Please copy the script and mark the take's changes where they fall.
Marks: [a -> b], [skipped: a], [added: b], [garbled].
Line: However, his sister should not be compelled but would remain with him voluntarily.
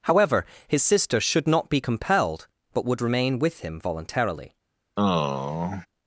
However, his sister should not be compelled but would remain with him voluntarily.